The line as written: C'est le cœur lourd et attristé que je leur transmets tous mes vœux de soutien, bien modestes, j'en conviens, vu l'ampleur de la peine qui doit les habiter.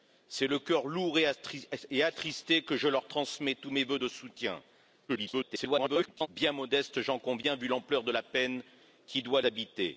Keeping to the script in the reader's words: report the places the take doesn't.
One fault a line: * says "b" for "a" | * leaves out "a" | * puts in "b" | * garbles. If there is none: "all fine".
* garbles
* leaves out "les"